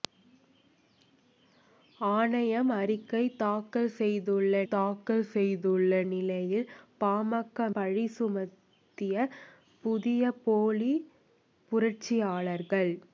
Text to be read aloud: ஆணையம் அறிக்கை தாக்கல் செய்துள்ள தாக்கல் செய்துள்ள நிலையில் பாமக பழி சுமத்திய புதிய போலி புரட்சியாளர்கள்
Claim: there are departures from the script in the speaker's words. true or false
false